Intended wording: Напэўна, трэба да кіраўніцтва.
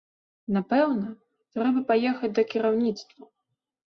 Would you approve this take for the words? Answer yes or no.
no